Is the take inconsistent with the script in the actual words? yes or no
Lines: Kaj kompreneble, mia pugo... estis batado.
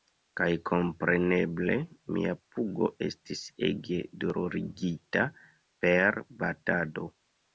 yes